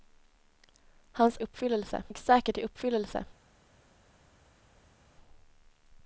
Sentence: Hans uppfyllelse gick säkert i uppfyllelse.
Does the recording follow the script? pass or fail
pass